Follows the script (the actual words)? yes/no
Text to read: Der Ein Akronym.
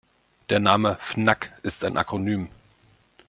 no